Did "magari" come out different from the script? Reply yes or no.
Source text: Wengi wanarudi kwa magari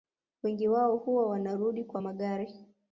no